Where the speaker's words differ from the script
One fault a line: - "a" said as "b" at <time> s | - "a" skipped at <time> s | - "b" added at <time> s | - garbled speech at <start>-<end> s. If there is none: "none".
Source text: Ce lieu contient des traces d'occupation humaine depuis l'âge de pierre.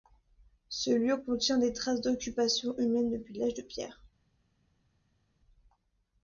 none